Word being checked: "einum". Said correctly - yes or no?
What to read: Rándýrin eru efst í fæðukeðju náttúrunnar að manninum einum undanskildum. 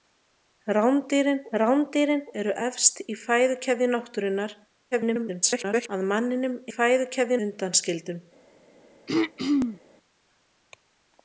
no